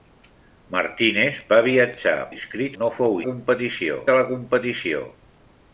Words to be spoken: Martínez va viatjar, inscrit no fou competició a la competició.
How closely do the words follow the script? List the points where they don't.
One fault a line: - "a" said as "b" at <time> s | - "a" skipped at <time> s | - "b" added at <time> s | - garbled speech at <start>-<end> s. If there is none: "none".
none